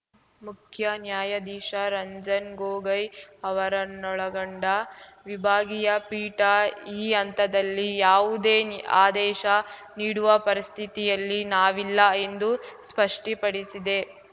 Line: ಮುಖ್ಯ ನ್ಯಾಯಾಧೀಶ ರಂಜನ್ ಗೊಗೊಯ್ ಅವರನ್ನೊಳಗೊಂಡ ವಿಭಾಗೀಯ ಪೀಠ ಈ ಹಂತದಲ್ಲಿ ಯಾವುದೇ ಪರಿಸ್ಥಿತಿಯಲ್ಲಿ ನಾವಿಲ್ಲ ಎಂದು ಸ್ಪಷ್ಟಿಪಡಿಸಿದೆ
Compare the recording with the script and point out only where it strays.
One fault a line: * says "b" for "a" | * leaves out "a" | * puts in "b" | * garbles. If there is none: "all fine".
* puts in "ಆದೇಶ ನೀಡುವ"